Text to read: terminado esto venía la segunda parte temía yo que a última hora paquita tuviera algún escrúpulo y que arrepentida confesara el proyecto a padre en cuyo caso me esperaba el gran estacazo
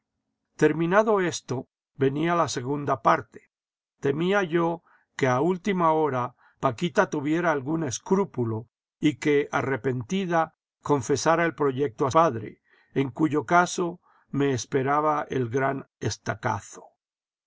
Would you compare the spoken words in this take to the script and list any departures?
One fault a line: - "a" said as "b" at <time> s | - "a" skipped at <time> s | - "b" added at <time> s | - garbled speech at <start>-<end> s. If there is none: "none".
none